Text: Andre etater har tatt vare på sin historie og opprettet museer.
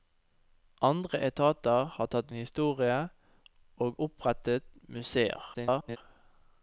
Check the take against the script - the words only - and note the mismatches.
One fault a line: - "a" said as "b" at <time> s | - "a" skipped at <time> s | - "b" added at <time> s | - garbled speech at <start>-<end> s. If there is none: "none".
- "vare på sin" skipped at 2.3 s
- garbled speech at 5.5-6.0 s